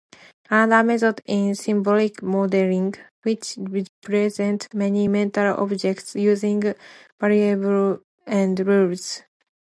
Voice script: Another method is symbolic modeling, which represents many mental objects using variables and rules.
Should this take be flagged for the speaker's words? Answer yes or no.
no